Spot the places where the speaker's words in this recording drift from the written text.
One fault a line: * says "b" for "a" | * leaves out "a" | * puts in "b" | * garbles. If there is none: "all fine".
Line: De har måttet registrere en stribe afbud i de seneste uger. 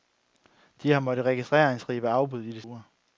* leaves out "seneste"